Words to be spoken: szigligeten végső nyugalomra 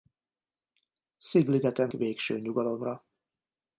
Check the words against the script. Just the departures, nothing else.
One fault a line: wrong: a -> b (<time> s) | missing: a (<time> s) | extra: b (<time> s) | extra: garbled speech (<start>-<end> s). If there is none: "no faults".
no faults